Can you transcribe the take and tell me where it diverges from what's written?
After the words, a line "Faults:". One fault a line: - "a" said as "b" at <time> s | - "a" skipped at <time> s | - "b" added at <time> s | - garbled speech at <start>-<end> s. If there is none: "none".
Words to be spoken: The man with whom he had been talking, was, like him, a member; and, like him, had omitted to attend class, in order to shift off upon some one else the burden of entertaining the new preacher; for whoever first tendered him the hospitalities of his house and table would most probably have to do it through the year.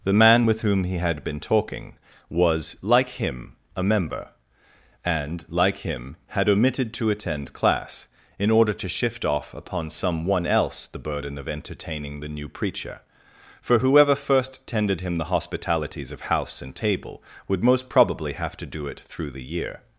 The man with whom he had been talking, was, like him, a member; and, like him, had omitted to attend class, in order to shift off upon some one else the burden of entertaining the new preacher; for whoever first tendered him the hospitalities of house and table would most probably have to do it through the year.
Faults:
- "his" skipped at 16.2 s